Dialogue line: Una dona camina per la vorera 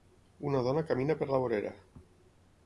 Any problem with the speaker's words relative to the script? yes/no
no